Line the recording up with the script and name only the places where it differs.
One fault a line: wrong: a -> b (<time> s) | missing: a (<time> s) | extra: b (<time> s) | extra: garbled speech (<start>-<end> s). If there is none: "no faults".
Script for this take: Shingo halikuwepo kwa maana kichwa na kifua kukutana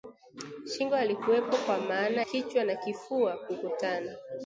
no faults